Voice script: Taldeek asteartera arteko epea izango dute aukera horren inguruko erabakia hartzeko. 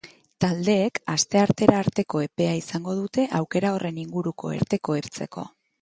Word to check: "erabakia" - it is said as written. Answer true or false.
false